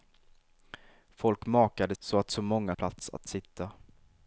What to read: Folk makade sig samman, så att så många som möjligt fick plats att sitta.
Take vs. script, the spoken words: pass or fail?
fail